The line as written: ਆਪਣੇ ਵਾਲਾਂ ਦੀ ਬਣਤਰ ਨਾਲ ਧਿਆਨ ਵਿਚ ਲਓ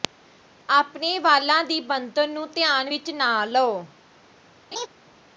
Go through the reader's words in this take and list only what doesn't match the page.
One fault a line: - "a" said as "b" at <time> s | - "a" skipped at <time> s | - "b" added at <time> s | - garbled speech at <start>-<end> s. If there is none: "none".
- "ਨਾਲ" said as "ਨੂੰ" at 2.3 s
- "ਨਾ" added at 3.1 s